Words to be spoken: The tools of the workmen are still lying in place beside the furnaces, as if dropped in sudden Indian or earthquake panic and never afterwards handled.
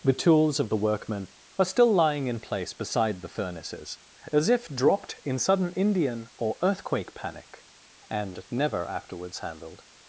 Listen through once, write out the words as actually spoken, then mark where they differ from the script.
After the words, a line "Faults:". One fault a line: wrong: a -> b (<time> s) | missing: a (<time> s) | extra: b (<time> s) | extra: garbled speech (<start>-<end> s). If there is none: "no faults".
The tools of the workmen are still lying in place beside the furnaces, as if dropped in sudden Indian or earthquake panic and never afterwards handled.
Faults:
no faults